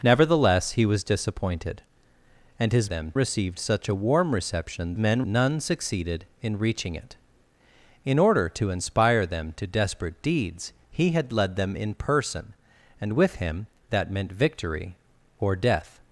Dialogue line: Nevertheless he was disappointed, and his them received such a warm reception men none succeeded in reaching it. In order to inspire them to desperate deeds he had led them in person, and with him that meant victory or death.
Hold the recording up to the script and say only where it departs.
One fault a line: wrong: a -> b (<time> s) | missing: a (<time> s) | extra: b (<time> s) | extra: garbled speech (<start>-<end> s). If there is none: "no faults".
no faults